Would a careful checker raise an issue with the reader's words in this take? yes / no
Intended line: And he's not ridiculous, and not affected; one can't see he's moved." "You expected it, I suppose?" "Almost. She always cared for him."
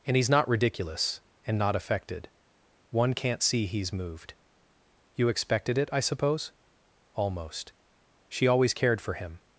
no